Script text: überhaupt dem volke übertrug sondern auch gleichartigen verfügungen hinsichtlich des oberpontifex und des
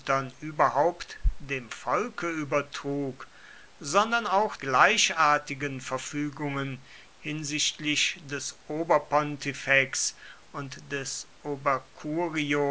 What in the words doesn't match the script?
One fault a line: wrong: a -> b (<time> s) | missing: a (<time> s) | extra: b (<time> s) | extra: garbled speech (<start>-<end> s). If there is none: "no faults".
no faults